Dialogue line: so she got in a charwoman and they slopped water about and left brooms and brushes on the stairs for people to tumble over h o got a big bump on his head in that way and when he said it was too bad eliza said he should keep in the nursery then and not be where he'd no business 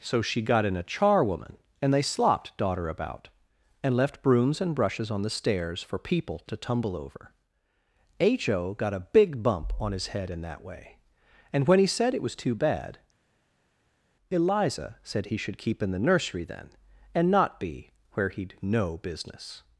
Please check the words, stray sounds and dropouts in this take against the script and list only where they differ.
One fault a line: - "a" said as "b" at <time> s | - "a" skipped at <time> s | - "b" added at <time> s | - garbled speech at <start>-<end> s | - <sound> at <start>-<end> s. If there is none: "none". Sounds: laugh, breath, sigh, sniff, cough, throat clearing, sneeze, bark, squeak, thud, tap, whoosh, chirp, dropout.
- "water" said as "daughter" at 2.6 s